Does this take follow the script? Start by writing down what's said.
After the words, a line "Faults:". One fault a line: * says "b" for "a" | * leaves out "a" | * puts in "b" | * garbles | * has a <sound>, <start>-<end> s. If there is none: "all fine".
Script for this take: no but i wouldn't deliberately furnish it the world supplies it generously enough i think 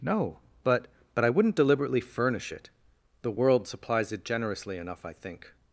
no but but i wouldn't deliberately furnish it the world supplies it generously enough i think
Faults:
* puts in "but"